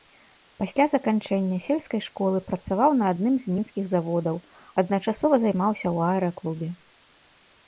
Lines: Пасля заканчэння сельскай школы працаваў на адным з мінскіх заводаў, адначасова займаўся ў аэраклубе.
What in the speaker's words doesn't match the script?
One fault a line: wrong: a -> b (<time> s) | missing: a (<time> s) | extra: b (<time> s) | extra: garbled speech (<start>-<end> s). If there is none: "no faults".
no faults